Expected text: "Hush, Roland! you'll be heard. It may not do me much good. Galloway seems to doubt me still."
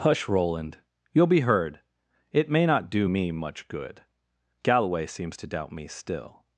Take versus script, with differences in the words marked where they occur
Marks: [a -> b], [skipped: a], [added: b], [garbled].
"Hush, Roland! you'll be heard. It may not do me much good. Galloway seems to doubt me still."